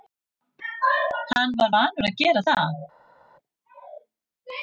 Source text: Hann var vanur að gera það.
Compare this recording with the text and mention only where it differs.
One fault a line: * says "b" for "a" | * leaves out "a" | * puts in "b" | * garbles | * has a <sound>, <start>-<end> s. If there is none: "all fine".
all fine